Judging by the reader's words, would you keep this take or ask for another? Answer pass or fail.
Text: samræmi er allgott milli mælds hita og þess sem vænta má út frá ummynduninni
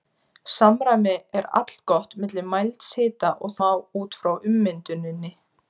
fail